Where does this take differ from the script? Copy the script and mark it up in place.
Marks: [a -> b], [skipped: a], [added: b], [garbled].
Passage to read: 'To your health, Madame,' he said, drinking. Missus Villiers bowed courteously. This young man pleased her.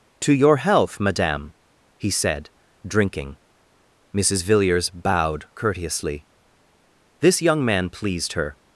'To your health, Madame,' he said, drinking. Missus Villiers bowed courteously. This young man pleased her.